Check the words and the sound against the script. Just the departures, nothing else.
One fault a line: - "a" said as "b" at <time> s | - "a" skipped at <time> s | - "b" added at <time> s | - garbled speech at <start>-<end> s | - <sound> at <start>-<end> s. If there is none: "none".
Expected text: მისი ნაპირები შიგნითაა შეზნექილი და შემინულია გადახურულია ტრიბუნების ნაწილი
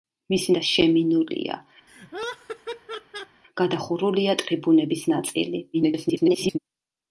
- "ნაპირები შიგნითაა შეზნექილი" skipped at 0.5 s
- laugh at 1.9-3.4 s
- garbled speech at 5.7-6.6 s